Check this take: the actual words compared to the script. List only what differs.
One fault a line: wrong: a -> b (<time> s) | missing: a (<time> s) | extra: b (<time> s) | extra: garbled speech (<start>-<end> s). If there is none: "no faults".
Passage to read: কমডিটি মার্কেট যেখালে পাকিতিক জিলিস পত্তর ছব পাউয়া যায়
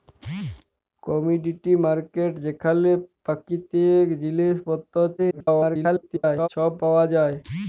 extra: garbled speech (5.2-6.5 s)